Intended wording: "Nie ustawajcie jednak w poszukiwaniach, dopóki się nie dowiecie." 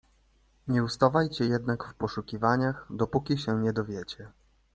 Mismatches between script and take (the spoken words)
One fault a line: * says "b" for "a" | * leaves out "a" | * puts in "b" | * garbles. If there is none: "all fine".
all fine